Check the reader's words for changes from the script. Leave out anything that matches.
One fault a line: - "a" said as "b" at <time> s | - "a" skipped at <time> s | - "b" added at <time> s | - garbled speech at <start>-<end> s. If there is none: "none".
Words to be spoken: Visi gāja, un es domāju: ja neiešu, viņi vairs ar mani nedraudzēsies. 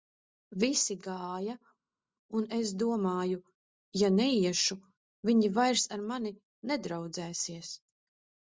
none